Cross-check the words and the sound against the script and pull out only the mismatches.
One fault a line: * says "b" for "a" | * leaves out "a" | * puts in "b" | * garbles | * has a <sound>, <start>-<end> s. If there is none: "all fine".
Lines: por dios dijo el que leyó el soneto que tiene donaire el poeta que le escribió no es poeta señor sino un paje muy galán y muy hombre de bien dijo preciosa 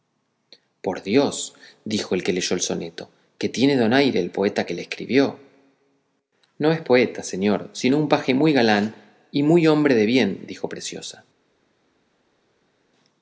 all fine